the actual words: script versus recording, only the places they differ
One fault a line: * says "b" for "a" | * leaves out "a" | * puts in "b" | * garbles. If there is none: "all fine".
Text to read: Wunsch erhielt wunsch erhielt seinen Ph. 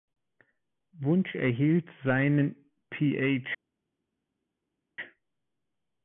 * leaves out "wunsch erhielt"